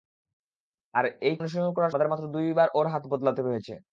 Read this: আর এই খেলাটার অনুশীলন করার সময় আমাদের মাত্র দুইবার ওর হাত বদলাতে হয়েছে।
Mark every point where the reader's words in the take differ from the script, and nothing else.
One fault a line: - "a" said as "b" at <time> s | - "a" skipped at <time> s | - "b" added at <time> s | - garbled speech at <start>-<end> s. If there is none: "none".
- "খেলাটার" skipped at 1.4 s
- "সময়" skipped at 1.9 s